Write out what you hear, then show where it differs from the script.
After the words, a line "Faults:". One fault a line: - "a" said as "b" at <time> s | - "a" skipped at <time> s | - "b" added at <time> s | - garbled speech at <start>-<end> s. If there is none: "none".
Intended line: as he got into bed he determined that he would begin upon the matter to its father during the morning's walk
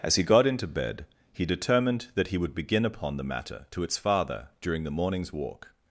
as he got into bed he determined that he would begin upon the matter to its father during the morning's walk
Faults:
none